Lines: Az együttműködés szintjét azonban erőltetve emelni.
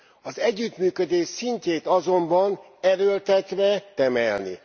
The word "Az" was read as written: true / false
true